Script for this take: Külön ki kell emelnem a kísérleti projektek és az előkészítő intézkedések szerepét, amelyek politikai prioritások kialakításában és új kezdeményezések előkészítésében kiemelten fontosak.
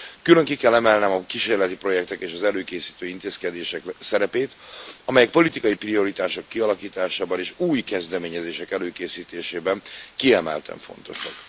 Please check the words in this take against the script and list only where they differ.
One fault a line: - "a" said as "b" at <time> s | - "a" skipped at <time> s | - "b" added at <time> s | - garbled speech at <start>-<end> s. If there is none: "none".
none